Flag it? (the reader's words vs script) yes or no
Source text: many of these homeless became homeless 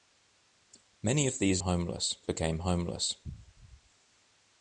no